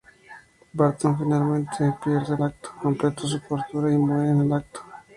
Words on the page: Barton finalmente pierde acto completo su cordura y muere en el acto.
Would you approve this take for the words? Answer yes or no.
yes